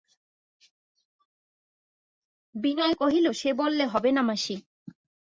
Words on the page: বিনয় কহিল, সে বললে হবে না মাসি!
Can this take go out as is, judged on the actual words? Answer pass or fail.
pass